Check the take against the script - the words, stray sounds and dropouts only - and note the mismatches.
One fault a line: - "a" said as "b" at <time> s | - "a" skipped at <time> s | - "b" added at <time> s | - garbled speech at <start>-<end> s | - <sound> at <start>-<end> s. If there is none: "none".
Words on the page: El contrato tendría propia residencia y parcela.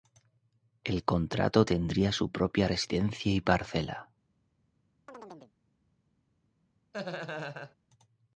- "su" added at 2.1 s
- chirp at 5.1-5.5 s
- laugh at 6.9-7.8 s